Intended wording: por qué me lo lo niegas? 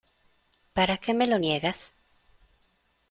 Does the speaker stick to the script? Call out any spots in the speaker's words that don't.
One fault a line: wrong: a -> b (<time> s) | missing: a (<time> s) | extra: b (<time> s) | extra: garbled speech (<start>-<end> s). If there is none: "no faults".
wrong: por -> para (0.7 s)
missing: lo (1.4 s)